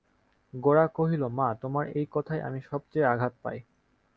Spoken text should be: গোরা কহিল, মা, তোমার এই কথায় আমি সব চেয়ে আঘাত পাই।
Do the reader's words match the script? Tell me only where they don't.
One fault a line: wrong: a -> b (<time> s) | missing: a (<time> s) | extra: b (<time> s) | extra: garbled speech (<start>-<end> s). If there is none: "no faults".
no faults